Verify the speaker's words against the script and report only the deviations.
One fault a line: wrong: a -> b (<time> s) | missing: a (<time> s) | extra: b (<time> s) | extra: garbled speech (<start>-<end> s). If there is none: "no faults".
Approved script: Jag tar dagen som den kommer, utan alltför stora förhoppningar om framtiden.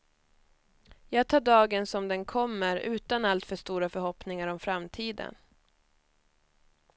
no faults